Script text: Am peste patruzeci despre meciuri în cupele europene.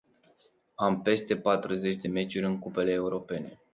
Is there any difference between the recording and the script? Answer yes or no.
yes